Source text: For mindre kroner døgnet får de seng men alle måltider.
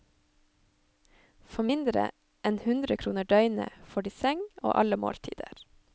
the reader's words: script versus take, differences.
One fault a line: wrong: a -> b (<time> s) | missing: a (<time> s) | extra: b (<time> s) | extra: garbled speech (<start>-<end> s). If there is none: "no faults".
extra: enn hundre (2.5 s)
wrong: men -> og (4.6 s)